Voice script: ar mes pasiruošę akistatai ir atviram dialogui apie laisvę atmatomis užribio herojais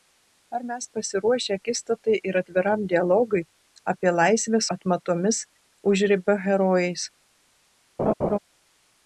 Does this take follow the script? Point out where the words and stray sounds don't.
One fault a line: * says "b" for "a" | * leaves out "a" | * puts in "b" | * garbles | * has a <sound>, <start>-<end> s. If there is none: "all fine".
* has a laugh, 8.0-8.4 s